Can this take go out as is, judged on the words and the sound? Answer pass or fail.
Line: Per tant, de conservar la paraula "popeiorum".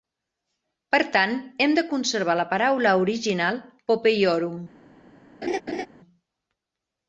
fail